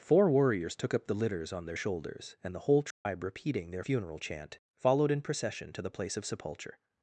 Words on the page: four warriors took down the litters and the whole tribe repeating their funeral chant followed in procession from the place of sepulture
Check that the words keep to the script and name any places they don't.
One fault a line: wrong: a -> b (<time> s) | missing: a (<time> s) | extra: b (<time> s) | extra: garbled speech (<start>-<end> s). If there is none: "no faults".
wrong: down -> up (0.9 s)
extra: on their shoulders (1.5 s)
wrong: from -> to (5.7 s)